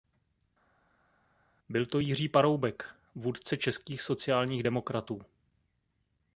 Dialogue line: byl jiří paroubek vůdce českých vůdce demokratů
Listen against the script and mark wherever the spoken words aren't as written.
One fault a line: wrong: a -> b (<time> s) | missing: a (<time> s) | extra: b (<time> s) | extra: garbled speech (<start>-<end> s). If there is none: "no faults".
extra: to (1.9 s)
wrong: vůdce -> sociálních (4.0 s)